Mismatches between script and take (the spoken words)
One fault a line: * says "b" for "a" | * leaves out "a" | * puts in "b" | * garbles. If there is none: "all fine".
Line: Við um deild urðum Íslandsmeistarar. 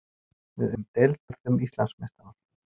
all fine